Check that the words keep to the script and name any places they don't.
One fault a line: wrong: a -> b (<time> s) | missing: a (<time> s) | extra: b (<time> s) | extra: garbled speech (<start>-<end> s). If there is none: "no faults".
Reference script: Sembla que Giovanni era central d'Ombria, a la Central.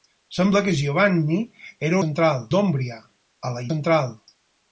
no faults